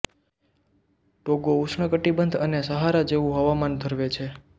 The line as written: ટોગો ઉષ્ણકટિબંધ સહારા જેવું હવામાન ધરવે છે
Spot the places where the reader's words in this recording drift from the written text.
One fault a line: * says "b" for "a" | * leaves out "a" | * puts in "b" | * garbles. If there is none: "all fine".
* puts in "અને"